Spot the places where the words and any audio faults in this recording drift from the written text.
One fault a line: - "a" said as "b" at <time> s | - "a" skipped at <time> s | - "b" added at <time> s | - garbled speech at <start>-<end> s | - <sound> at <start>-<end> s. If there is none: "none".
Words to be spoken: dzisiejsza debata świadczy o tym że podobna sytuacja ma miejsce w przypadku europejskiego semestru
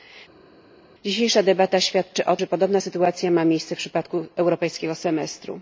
- "tym" skipped at 2.4 s